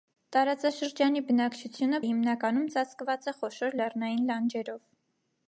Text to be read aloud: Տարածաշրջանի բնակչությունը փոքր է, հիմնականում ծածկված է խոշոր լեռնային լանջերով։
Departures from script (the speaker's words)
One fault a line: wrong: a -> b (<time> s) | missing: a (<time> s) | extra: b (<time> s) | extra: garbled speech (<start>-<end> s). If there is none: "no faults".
missing: փոքր (2.0 s)